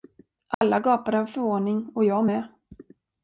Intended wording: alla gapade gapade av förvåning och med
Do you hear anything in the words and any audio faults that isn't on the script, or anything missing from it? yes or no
yes